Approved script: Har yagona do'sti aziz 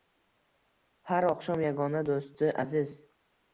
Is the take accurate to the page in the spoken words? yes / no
no